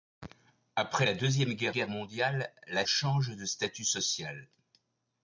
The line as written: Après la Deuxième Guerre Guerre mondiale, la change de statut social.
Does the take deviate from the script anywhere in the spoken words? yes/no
no